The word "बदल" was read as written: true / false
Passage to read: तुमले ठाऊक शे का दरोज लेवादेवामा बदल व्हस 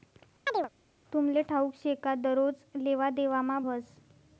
false